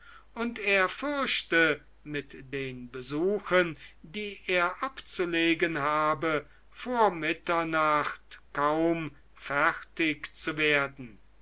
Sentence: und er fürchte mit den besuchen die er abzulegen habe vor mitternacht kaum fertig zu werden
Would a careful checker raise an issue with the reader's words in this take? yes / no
no